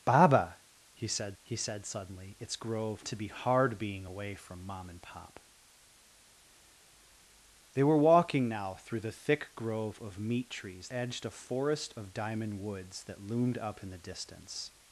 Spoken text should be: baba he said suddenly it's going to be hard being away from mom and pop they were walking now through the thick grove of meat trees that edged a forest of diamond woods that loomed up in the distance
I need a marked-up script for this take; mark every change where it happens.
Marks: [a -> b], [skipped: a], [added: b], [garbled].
baba he said [added: he said] suddenly it's [going -> grove] to be hard being away from mom and pop they were walking now through the thick grove of meat trees [skipped: that] edged a forest of diamond woods that loomed up in the distance